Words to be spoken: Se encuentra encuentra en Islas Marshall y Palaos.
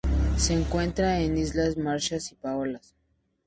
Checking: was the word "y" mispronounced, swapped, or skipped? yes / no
no